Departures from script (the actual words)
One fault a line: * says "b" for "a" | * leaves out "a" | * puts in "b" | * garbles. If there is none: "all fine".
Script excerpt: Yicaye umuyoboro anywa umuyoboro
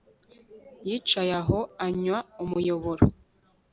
* says "aho" for "umuyoboro"